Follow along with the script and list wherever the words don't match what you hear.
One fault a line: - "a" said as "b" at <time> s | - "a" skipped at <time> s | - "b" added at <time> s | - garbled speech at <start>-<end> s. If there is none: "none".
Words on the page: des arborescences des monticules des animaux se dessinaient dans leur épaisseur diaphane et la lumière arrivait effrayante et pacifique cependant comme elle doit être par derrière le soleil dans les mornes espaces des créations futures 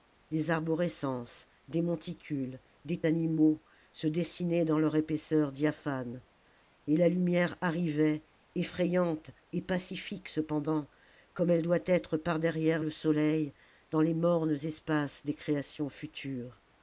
none